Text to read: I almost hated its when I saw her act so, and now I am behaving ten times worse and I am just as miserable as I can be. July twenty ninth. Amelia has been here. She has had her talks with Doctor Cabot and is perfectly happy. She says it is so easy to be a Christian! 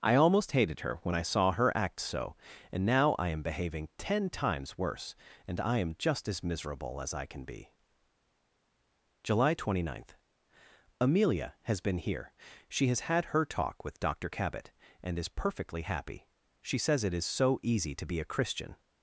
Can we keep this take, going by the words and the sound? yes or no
no